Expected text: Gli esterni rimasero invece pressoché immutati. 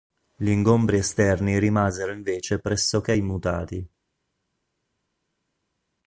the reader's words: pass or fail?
fail